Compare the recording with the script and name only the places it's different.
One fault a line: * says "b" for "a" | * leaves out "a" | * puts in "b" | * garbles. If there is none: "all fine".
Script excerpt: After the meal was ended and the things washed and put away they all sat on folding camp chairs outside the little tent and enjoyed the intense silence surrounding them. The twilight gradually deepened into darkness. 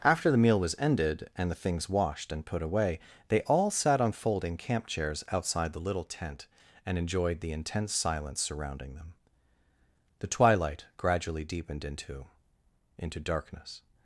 * puts in "into"